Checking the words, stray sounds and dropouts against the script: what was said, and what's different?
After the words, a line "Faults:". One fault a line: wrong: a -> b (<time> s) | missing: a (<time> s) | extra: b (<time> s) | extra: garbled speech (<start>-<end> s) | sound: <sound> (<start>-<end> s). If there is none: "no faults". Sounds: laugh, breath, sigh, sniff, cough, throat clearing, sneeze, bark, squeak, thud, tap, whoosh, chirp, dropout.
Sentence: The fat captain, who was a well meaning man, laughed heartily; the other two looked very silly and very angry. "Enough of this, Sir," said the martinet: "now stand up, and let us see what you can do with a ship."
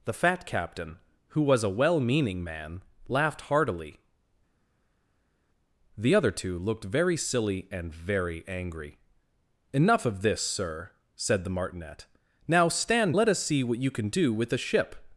The fat captain, who was a well meaning man, laughed heartily; the other two looked very silly and very angry. "Enough of this, Sir," said the martinet: "now stand let us see what you can do with a ship."
Faults:
missing: up and (13.2 s)